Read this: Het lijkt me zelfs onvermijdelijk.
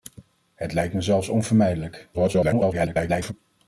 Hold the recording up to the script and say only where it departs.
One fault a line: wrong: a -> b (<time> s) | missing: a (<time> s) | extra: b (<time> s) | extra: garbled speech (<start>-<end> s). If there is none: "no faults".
extra: garbled speech (2.1-3.3 s)